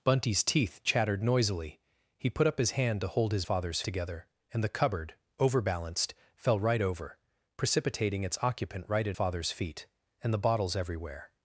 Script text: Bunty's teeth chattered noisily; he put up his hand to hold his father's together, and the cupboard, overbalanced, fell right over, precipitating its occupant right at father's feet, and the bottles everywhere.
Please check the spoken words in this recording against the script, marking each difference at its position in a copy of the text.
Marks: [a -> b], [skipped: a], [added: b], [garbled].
Bunty's teeth chattered noisily; he put up his hand to hold his father's together, and the cupboard, overbalanced, fell right over, precipitating its occupant right at father's feet, and the bottles everywhere.